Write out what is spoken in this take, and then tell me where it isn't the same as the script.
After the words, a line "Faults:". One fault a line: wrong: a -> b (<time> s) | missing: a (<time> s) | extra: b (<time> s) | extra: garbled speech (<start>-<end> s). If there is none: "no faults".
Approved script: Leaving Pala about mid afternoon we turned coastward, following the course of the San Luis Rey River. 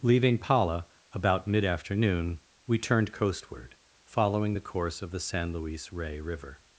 Leaving Pala about mid afternoon we turned coastward, following the course of the San Luis Rey River.
Faults:
no faults